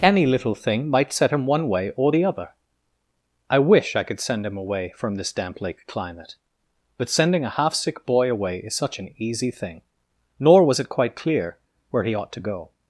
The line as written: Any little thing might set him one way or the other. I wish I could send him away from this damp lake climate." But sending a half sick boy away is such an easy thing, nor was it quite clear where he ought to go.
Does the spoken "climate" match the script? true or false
true